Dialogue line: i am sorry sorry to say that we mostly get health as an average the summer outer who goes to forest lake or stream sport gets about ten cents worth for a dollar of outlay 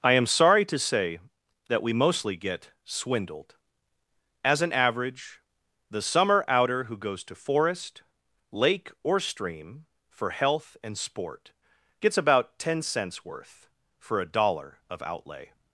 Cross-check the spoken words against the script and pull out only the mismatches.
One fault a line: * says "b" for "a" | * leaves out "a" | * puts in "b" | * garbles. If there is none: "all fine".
* leaves out "sorry"
* says "swindled" for "health"
* puts in "for health and"